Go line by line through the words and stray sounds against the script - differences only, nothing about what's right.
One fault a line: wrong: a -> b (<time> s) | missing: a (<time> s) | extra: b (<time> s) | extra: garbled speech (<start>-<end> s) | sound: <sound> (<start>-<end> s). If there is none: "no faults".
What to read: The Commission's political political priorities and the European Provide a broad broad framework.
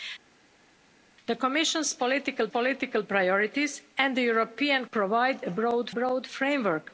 no faults